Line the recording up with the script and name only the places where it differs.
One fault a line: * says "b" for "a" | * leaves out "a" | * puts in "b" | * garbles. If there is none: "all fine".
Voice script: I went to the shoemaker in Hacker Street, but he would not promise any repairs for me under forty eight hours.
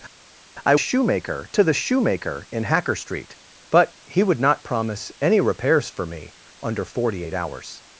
* says "shoemaker" for "went"